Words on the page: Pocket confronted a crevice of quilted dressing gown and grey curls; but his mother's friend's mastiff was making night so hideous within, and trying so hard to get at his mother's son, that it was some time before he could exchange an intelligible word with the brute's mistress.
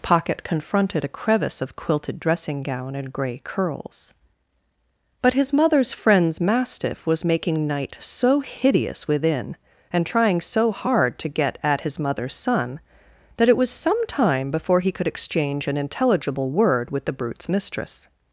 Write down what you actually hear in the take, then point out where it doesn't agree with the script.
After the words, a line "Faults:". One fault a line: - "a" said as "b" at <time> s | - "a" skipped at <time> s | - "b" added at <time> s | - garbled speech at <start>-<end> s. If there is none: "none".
Pocket confronted a crevice of quilted dressing gown and grey curls; but his mother's friend's mastiff was making night so hideous within, and trying so hard to get at his mother's son, that it was some time before he could exchange an intelligible word with the brute's mistress.
Faults:
none